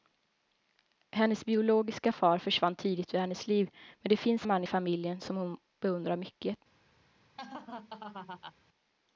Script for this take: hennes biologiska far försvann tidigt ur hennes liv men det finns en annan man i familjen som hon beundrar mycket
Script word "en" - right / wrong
wrong